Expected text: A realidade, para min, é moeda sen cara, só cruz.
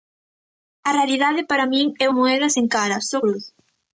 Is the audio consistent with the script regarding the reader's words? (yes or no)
yes